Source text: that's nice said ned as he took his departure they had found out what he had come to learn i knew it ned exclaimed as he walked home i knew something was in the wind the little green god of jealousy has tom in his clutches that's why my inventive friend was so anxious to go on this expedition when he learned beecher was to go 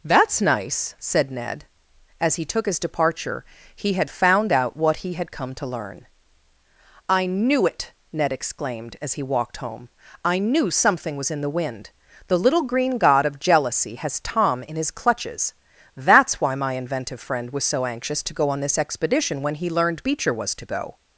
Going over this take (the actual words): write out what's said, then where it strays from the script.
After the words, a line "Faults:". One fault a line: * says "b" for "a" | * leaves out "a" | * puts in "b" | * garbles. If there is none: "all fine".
that's nice said ned as he took his departure he had found out what he had come to learn i knew it ned exclaimed as he walked home i knew something was in the wind the little green god of jealousy has tom in his clutches that's why my inventive friend was so anxious to go on this expedition when he learned beecher was to go
Faults:
* says "he" for "they"